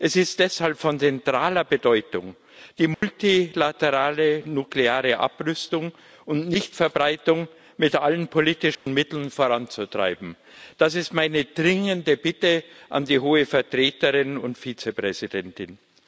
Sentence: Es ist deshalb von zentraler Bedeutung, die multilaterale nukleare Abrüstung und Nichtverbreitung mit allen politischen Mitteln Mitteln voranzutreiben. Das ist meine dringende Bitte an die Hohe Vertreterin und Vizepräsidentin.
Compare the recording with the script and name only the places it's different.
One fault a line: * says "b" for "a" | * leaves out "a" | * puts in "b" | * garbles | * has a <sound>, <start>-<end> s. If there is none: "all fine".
* has a dropout, 2.9-3.0 s
* has a dropout, 8.7-8.9 s
* leaves out "Mitteln"